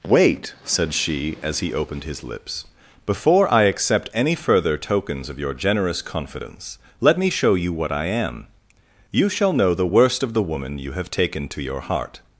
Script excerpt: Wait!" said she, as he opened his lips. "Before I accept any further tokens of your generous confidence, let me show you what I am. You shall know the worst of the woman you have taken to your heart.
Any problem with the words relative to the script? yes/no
no